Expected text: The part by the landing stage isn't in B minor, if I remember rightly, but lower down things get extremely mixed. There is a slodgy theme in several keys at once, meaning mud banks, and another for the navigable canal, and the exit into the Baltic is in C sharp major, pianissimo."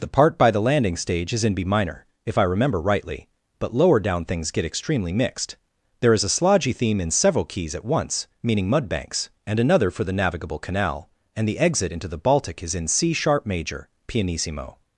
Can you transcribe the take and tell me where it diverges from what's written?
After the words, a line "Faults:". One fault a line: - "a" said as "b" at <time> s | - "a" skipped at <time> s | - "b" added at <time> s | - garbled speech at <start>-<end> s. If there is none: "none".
The part by the landing stage is in B minor, if I remember rightly, but lower down things get extremely mixed. There is a slodgy theme in several keys at once, meaning mud banks, and another for the navigable canal, and the exit into the Baltic is in C sharp major, pianissimo."
Faults:
- "isn't" said as "is" at 1.3 s